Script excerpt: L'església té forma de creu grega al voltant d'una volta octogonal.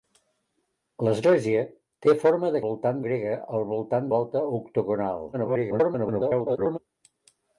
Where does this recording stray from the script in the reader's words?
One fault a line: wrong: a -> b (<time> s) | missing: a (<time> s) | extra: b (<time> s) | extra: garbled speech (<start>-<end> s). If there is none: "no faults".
wrong: creu -> voltant (2.6 s)
missing: d'una (4.1 s)
extra: garbled speech (5.3-6.8 s)